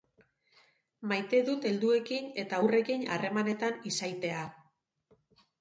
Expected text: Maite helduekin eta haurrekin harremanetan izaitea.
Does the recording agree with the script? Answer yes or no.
no